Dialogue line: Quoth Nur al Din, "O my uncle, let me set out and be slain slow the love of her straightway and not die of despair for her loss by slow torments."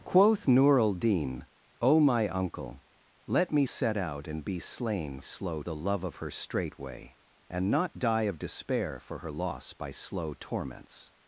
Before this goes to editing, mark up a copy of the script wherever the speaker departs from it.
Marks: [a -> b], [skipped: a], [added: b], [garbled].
Quoth Nur al Din, "O my uncle, let me set out and be slain slow the love of her straightway and not die of despair for her loss by slow torments."